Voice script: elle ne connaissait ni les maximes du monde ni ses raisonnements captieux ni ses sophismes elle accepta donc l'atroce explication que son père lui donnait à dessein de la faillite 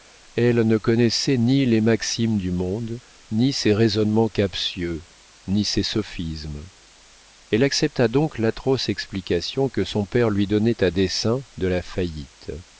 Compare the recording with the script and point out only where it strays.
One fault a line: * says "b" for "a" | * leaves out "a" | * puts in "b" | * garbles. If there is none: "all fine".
all fine